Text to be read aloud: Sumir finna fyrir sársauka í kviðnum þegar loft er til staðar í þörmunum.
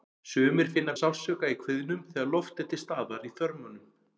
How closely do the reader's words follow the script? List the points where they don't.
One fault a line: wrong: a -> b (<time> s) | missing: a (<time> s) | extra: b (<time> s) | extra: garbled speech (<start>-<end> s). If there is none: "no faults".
missing: fyrir (0.9 s)